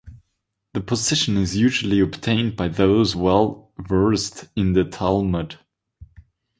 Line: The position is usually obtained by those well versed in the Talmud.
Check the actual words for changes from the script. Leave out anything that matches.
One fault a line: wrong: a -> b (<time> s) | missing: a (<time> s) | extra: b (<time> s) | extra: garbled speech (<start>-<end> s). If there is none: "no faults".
no faults